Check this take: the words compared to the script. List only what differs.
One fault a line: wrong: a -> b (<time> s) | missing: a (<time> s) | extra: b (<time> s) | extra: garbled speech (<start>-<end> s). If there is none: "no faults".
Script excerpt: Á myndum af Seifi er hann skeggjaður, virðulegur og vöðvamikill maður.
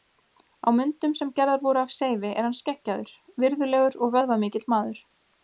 extra: sem gerðar voru (1.2 s)